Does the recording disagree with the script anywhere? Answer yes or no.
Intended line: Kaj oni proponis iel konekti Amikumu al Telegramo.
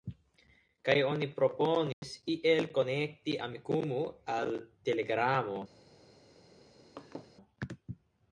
no